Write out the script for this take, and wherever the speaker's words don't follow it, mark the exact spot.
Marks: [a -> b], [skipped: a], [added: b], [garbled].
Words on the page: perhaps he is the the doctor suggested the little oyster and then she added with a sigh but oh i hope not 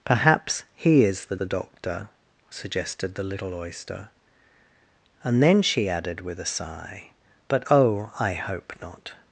perhaps he is the the doctor suggested the little oyster and then she added with a sigh but oh i hope not